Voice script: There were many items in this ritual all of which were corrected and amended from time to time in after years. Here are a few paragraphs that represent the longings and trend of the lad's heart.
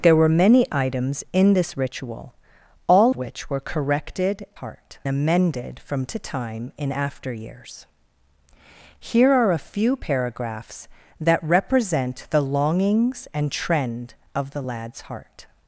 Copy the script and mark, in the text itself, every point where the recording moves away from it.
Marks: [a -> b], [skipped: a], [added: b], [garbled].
There were many items in this ritual all [skipped: of] which were corrected [and -> heart] amended from [skipped: time] to time in after years. Here are a few paragraphs that represent the longings and trend of the lad's heart.